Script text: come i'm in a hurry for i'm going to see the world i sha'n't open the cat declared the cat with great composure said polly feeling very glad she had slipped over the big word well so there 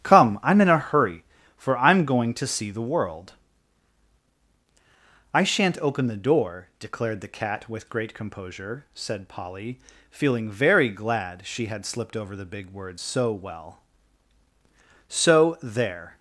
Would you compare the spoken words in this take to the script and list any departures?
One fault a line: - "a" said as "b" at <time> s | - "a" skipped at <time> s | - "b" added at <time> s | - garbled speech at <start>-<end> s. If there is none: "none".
- "cat" said as "door" at 6.2 s
- "so" added at 13.0 s